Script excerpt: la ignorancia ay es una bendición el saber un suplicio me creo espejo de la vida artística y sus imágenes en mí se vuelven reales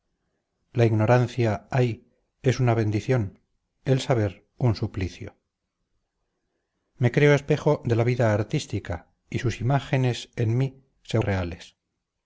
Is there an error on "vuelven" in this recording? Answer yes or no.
yes